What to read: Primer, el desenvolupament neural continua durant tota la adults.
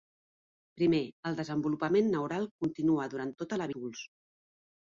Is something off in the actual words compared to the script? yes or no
no